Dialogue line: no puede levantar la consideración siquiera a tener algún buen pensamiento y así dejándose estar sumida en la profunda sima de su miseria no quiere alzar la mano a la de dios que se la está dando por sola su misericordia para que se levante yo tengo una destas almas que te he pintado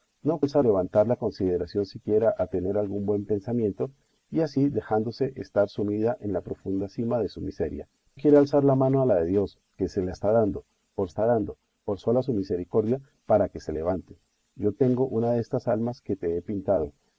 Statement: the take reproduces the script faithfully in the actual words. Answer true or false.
false